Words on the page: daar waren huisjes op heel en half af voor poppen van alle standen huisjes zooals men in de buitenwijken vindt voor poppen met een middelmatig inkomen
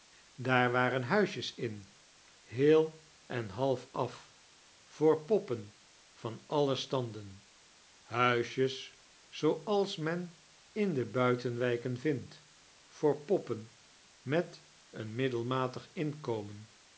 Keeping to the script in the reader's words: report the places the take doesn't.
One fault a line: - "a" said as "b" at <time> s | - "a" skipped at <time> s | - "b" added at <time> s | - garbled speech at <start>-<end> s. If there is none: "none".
- "op" said as "in" at 1.6 s